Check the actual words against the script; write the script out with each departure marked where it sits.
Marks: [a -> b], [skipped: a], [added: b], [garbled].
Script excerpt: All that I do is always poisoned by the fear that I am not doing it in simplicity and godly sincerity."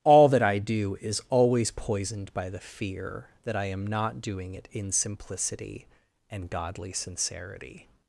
All that I do is always poisoned by the fear that I am not doing it in simplicity and godly sincerity."